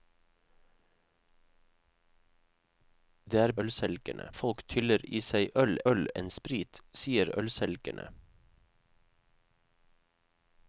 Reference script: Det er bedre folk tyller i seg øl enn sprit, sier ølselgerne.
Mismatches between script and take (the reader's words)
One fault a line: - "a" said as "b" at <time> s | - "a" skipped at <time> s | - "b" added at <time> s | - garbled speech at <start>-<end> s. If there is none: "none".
- "bedre" said as "ølselgerne" at 3.6 s
- "øl" added at 5.9 s